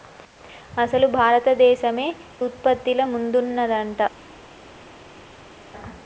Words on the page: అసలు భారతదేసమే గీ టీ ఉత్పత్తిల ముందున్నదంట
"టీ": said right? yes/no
no